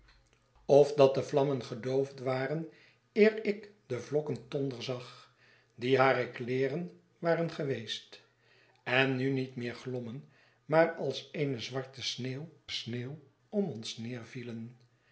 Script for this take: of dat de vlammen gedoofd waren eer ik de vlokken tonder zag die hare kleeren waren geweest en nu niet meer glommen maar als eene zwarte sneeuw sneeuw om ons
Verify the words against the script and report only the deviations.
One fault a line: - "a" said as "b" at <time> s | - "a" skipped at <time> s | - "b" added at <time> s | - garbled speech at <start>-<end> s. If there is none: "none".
none